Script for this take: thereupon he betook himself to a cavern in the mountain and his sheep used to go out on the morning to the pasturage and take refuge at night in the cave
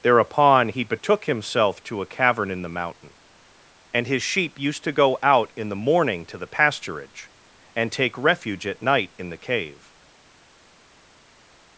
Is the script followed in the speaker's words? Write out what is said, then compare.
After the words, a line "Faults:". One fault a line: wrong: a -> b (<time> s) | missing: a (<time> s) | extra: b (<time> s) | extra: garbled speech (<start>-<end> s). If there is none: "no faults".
thereupon he betook himself to a cavern in the mountain and his sheep used to go out in the morning to the pasturage and take refuge at night in the cave
Faults:
wrong: on -> in (5.5 s)